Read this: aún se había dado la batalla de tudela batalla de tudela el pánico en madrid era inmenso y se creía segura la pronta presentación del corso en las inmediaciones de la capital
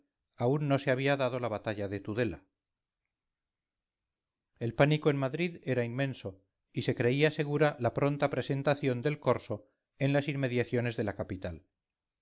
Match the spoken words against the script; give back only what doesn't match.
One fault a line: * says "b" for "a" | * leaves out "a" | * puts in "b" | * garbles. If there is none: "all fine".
* puts in "no"
* leaves out "batalla de tudela"